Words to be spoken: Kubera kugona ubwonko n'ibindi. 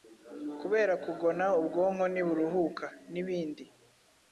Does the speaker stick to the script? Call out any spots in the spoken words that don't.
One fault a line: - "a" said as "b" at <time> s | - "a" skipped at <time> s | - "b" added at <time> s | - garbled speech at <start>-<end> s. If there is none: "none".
- "ntiburuhuka" added at 2.1 s